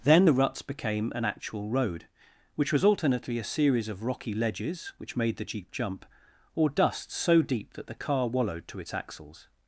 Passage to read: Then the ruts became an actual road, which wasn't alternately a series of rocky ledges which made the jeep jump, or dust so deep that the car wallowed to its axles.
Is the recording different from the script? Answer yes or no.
yes